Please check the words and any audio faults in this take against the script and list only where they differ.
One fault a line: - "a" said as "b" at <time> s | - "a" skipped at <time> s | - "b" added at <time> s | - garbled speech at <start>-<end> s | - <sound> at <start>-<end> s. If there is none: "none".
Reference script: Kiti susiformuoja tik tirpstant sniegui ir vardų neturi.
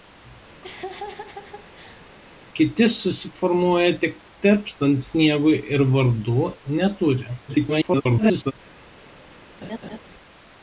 - laugh at 0.6-2.1 s
- garbled speech at 7.5-8.5 s
- laugh at 9.6-10.0 s